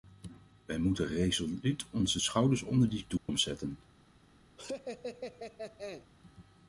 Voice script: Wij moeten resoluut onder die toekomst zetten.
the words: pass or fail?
fail